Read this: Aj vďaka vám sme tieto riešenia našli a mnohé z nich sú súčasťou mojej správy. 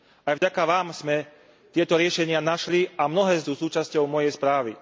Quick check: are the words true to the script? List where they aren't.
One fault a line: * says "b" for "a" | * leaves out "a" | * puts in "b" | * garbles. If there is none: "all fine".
* leaves out "nich"